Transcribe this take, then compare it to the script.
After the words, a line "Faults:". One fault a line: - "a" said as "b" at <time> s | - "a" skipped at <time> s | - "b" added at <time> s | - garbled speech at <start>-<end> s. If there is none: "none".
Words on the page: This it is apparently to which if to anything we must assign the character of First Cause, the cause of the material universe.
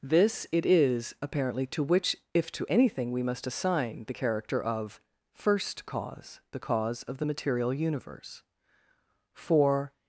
This it is apparently to which if to anything we must assign the character of First Cause, the cause of the material universe. For
Faults:
- "For" added at 9.3 s